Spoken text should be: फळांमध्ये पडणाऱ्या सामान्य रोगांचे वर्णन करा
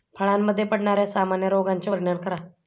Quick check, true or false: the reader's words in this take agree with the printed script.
true